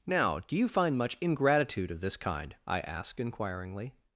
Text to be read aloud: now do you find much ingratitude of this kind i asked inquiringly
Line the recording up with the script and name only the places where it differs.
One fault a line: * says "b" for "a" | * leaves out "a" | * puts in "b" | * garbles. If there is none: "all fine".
all fine